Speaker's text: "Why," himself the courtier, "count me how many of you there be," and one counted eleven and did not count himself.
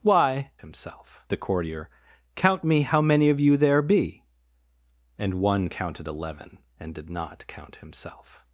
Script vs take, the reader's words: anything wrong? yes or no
no